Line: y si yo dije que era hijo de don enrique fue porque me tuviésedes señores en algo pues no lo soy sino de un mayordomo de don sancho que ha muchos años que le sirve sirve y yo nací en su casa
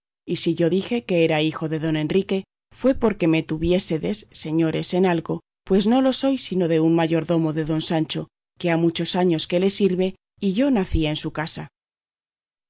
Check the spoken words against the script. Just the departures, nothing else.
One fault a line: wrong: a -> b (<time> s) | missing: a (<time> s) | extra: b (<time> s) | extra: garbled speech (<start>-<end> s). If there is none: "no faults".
missing: sirve (10.1 s)